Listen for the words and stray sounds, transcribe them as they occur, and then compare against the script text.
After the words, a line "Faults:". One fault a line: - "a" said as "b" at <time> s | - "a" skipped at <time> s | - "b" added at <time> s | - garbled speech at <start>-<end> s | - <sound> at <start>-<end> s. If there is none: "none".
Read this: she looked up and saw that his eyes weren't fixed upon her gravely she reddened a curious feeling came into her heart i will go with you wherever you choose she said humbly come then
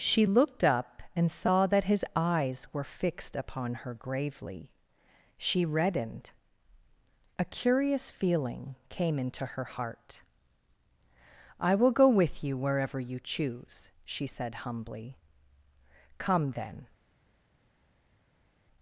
she looked up and saw that his eyes were fixed upon her gravely she reddened a curious feeling came into her heart i will go with you wherever you choose she said humbly come then
Faults:
- "weren't" said as "were" at 2.7 s